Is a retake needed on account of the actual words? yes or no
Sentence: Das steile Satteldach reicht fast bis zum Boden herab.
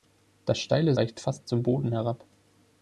yes